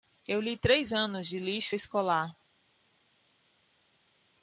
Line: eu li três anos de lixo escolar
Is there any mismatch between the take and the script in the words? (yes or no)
no